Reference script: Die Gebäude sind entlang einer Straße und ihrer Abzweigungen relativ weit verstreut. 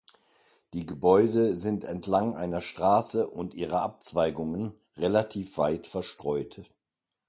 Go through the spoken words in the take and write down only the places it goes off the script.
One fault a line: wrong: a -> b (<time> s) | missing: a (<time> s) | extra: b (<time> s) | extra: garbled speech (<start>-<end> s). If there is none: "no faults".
no faults